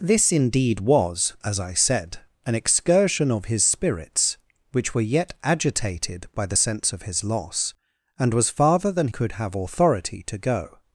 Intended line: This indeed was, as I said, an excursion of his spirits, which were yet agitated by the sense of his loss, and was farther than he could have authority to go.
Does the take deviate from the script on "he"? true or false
true